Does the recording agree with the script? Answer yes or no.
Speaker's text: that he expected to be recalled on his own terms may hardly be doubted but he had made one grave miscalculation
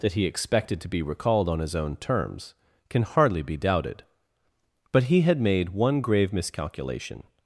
no